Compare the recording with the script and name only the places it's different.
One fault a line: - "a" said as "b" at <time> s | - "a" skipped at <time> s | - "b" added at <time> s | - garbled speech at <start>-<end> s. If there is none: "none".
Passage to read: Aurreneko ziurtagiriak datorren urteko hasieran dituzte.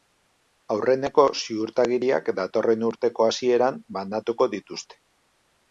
- "banatuko" added at 4.0 s